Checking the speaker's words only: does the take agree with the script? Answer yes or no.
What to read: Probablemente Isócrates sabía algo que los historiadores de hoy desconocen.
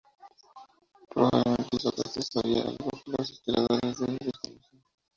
yes